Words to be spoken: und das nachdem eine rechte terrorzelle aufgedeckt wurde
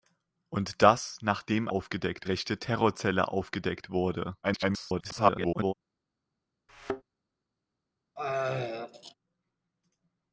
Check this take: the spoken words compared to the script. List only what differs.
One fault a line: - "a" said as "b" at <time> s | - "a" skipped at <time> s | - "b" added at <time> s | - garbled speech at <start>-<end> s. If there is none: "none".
- "eine" said as "aufgedeckt" at 1.7 s
- garbled speech at 4.4-5.7 s